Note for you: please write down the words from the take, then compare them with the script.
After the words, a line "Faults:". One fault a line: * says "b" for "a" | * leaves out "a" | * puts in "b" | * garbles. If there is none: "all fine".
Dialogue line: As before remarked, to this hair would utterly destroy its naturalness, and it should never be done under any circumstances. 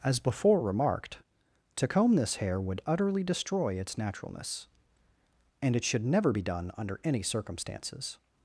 As before remarked, to comb this hair would utterly destroy its naturalness, and it should never be done under any circumstances.
Faults:
* puts in "comb"